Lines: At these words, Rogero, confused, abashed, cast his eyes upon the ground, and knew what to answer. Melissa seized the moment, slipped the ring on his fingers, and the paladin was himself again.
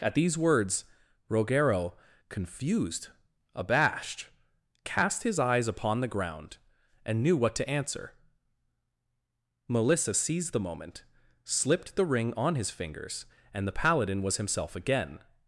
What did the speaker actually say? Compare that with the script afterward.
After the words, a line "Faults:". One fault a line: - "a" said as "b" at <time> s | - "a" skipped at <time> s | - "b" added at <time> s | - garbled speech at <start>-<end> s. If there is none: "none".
At these words, Rogero, confused, abashed, cast his eyes upon the ground, and knew what to answer. Melissa seized the moment, slipped the ring on his fingers, and the paladin was himself again.
Faults:
none